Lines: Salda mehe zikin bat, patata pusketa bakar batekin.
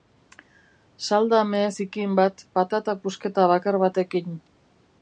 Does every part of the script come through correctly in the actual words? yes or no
yes